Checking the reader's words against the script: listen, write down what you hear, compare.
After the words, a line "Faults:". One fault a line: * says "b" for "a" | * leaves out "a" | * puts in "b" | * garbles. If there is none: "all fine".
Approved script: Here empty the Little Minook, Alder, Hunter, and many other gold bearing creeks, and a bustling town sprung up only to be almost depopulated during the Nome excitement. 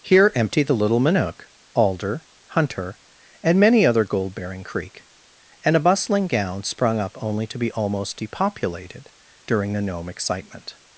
Here empty the Little Minook, Alder, Hunter, and many other gold bearing creek, and a bustling gown sprung up only to be almost depopulated during the Nome excitement.
Faults:
* says "creek" for "creeks"
* says "gown" for "town"